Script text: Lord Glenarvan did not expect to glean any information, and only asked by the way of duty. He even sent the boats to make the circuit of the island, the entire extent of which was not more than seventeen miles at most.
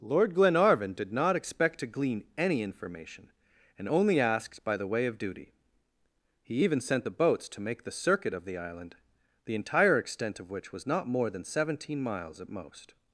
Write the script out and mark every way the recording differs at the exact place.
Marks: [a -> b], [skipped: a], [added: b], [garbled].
Lord Glenarvan did not expect to glean any information, and only asked by the way of duty. He even sent the boats to make the circuit of the island, the entire extent of which was not more than seventeen miles at most.